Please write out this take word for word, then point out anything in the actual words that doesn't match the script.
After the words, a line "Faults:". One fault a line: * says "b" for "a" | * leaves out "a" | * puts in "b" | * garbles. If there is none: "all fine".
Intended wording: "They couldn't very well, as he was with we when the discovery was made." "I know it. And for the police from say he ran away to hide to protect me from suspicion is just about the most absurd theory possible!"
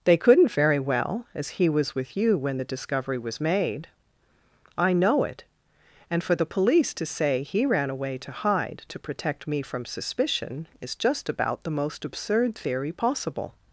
"They couldn't very well, as he was with you when the discovery was made." "I know it. And for the police to say he ran away to hide to protect me from suspicion is just about the most absurd theory possible!"
Faults:
* says "you" for "we"
* says "to" for "from"